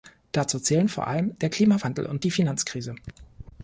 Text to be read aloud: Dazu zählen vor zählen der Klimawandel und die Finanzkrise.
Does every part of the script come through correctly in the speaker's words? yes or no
no